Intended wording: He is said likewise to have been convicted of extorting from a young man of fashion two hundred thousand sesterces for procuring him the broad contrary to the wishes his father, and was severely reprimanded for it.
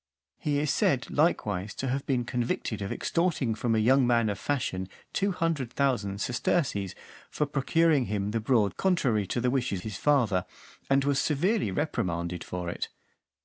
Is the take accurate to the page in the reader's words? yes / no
yes